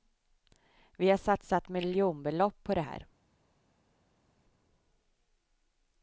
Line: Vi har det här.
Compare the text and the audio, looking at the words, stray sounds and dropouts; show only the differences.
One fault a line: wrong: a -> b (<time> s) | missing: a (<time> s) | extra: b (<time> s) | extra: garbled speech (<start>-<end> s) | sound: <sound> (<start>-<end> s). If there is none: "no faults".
extra: satsat miljonbelopp på (1.2 s)